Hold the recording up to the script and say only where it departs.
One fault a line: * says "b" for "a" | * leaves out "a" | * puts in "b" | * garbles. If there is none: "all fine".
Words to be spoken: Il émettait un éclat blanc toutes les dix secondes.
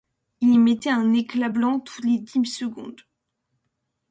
all fine